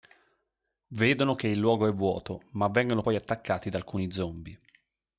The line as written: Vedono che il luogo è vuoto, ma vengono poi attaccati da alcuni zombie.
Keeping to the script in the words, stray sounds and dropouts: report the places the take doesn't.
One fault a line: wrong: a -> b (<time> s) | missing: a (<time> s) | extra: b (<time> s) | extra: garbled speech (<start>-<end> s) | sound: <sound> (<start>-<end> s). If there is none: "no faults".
no faults